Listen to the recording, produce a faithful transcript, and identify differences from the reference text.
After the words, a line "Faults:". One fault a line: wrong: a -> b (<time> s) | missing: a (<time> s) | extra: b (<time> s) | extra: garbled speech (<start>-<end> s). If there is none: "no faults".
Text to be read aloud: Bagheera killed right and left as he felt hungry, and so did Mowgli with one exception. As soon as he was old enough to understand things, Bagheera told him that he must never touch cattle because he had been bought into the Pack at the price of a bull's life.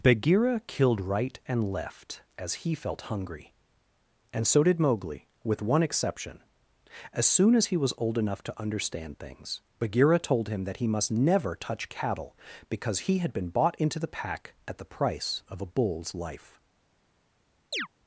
Bagheera killed right and left as he felt hungry, and so did Mowgli with one exception. As soon as he was old enough to understand things, Bagheera told him that he must never touch cattle because he had been bought into the Pack at the price of a bull's life.
Faults:
no faults